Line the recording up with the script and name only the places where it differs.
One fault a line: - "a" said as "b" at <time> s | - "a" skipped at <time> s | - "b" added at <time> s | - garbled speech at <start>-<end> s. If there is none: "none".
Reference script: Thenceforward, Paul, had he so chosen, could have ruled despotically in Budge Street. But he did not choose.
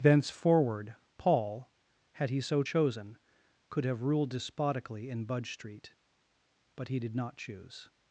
none